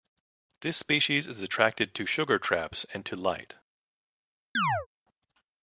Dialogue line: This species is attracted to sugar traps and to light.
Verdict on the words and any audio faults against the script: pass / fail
fail